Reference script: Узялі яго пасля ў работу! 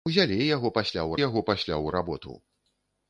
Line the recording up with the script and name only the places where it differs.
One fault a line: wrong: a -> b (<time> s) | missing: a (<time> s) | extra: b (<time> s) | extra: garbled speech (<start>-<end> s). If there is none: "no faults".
extra: яго пасля ў (1.3 s)